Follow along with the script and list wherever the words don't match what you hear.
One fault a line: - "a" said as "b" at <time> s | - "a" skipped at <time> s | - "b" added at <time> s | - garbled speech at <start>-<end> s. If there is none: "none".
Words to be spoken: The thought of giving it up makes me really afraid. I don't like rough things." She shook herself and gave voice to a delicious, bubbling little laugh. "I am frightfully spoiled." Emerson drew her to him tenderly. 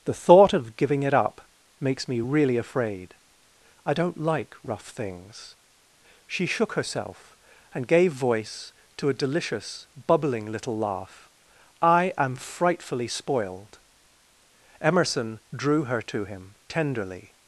none